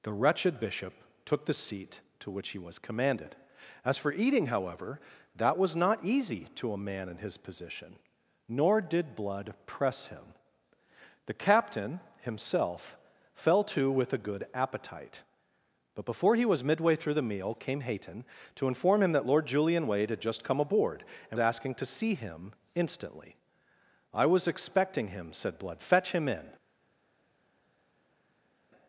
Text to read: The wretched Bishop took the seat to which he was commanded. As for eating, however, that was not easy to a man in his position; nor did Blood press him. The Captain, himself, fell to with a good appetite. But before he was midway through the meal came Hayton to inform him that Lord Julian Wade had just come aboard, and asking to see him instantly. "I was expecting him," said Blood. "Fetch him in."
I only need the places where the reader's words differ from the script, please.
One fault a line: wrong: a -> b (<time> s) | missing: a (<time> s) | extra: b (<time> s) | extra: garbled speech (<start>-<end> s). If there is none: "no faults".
no faults